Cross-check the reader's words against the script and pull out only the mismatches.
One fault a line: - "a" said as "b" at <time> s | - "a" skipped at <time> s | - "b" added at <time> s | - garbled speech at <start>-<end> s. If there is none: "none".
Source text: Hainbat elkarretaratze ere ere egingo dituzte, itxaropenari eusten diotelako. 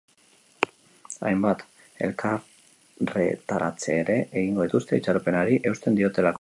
- "ere" skipped at 4.2 s